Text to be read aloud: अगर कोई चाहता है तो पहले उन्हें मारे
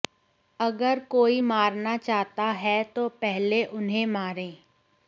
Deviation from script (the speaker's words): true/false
true